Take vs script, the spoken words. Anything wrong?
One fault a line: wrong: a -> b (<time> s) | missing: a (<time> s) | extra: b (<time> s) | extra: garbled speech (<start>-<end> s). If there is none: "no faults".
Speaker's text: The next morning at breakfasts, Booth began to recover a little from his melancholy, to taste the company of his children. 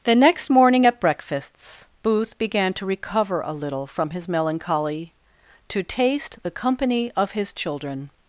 no faults